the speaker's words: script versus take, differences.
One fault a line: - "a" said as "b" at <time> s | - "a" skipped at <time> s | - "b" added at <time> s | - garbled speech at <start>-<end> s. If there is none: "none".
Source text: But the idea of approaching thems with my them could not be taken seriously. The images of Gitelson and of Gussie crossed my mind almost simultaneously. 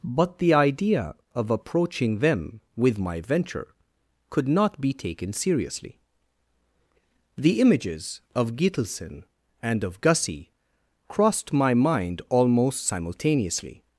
- "thems" said as "them" at 2.2 s
- "them" said as "venture" at 3.2 s